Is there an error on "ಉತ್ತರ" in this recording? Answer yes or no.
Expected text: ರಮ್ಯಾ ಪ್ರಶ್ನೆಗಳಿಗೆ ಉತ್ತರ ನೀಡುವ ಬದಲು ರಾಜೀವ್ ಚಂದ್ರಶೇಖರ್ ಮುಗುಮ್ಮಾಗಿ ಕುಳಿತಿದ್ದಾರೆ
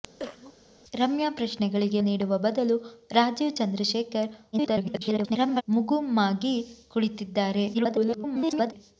yes